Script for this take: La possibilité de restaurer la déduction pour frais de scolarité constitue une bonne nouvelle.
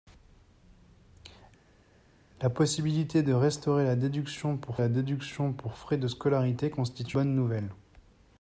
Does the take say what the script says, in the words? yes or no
no